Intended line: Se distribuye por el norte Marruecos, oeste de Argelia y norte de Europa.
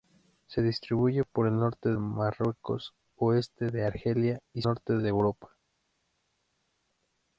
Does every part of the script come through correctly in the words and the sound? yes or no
yes